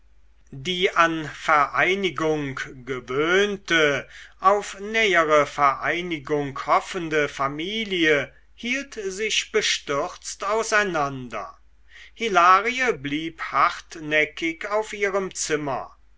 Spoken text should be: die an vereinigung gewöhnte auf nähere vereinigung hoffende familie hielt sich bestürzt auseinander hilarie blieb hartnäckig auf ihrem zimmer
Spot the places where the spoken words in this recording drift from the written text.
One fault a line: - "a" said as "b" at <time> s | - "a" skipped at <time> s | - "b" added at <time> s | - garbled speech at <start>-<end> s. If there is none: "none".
none